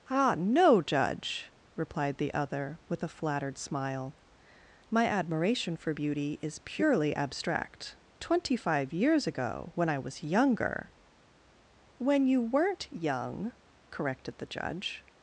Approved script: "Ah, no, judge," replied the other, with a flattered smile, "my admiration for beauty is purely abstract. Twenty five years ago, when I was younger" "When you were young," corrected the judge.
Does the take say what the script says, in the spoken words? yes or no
no